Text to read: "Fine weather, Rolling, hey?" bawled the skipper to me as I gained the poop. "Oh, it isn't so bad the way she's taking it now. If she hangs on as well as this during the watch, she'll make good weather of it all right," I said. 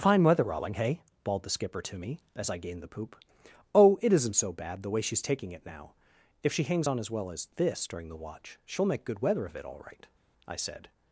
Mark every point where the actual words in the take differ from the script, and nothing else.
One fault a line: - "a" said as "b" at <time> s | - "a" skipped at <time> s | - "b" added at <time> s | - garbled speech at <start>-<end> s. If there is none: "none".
none